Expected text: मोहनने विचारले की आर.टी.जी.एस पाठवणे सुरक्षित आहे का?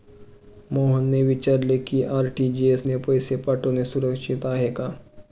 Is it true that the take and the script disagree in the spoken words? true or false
true